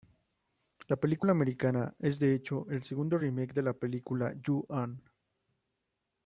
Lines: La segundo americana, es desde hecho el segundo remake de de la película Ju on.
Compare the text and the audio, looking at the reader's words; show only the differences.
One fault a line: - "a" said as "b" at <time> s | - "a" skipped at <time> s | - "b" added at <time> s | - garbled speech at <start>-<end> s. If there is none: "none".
- "segundo" said as "película" at 0.9 s
- "desde" said as "de" at 2.2 s
- "de" skipped at 3.6 s